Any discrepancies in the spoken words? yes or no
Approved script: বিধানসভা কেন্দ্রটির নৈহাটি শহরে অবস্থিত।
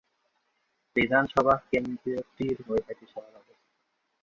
no